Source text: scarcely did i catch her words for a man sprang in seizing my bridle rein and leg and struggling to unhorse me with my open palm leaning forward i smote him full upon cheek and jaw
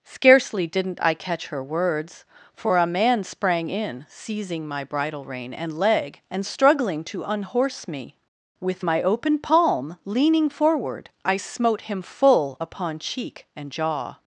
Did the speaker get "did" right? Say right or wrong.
wrong